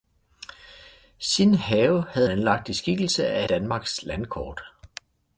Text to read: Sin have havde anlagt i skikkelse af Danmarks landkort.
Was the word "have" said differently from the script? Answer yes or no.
no